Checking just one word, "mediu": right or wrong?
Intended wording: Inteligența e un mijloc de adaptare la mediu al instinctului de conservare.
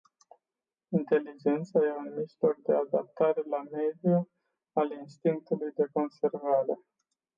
right